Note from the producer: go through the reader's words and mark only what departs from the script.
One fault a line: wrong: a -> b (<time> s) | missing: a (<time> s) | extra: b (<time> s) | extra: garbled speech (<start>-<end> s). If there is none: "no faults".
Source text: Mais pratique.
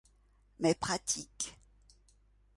no faults